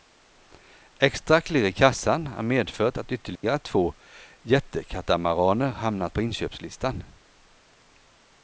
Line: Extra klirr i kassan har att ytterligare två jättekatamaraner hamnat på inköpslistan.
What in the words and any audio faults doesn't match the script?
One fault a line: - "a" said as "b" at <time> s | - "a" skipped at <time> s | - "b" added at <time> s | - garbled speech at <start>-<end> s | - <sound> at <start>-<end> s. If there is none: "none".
- "medfört" added at 2.4 s
- dropout at 3.4-3.4 s